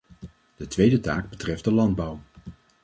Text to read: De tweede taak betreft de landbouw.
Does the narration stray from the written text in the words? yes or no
no